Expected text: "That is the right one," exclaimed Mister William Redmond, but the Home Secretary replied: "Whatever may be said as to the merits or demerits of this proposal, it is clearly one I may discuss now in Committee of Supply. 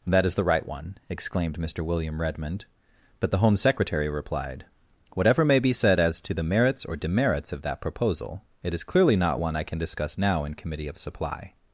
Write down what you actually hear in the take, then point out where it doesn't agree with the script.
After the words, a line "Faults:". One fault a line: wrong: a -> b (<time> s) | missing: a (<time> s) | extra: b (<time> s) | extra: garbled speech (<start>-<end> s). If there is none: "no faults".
"That is the right one," exclaimed Mister William Redmond, but the Home Secretary replied: "Whatever may be said as to the merits or demerits of that proposal, it is clearly not one I can discuss now in Committee of Supply.
Faults:
wrong: this -> that (7.6 s)
extra: not (9.2 s)
wrong: may -> can (9.6 s)